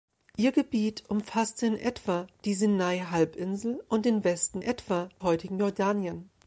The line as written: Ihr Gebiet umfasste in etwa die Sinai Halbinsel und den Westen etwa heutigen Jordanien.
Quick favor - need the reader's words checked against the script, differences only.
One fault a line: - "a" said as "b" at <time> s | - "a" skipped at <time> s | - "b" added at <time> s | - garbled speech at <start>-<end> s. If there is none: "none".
none